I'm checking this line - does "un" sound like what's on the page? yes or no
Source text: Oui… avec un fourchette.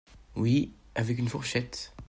no